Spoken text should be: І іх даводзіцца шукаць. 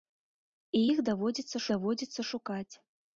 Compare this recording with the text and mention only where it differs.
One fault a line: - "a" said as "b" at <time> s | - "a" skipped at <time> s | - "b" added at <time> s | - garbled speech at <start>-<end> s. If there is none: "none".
- "даводзіцца" added at 1.7 s